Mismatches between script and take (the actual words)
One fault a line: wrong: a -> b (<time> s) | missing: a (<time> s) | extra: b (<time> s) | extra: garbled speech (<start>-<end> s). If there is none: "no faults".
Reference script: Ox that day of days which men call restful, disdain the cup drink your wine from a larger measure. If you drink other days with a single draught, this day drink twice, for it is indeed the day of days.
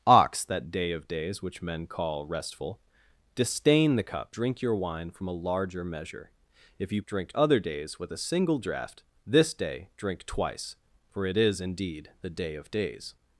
no faults